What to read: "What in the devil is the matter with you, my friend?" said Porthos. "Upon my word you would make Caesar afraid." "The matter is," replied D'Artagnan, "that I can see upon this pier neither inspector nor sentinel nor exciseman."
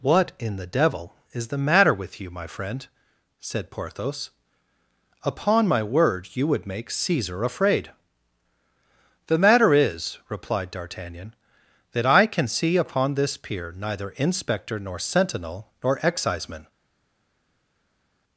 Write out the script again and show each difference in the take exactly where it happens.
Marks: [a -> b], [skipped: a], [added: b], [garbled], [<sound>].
"What in the devil is the matter with you, my friend?" said Porthos. "Upon my word you would make Caesar afraid." "The matter is," replied D'Artagnan, "that I can see upon this pier neither inspector nor sentinel nor exciseman."